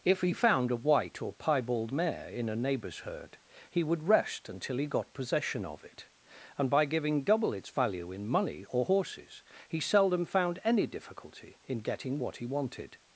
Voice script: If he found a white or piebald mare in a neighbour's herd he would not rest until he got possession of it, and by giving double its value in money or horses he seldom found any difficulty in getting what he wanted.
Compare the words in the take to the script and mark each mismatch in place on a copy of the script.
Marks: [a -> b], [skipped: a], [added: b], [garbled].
If he found a white or piebald mare in a neighbour's herd he would [skipped: not] rest until he got possession of it, and by giving double its value in money or horses he seldom found any difficulty in getting what he wanted.